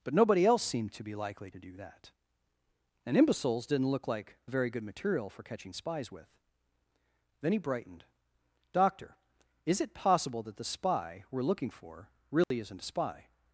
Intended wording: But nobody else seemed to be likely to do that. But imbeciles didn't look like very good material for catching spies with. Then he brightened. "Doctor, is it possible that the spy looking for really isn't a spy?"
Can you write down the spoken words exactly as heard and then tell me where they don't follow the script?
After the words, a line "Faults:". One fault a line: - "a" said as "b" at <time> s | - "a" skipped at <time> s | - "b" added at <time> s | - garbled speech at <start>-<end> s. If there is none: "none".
But nobody else seemed to be likely to do that. And imbeciles didn't look like very good material for catching spies with. Then he brightened. "Doctor, is it possible that the spy we're looking for really isn't a spy?"
Faults:
- "But" said as "And" at 3.0 s
- "we're" added at 11.3 s